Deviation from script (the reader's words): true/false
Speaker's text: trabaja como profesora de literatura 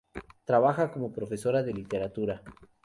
false